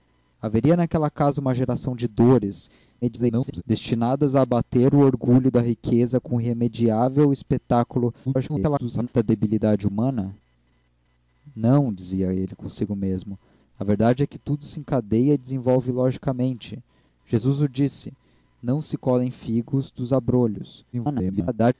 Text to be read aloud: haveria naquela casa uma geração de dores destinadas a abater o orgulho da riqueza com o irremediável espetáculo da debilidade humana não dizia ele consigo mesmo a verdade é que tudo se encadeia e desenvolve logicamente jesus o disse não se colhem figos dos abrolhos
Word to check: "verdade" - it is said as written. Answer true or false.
true